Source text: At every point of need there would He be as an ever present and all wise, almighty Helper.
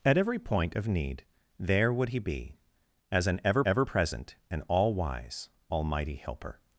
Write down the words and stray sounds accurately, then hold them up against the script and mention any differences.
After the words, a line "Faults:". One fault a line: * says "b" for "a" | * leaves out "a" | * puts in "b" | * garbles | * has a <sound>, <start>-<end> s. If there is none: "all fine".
At every point of need there would He be as an ever ever present and all wise, almighty Helper.
Faults:
* puts in "ever"